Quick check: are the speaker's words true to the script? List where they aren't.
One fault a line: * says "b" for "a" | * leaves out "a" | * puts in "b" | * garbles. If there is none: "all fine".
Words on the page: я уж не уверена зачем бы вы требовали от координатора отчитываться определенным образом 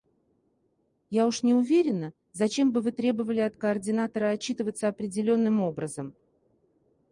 all fine